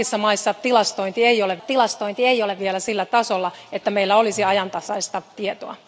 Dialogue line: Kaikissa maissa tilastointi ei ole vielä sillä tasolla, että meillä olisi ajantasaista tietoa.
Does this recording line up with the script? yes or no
no